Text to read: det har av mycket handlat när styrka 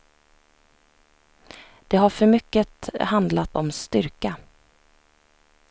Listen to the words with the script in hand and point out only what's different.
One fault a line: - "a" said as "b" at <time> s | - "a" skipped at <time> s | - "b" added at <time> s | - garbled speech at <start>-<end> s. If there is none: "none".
- "av" said as "för" at 2.1 s
- "när" said as "om" at 3.5 s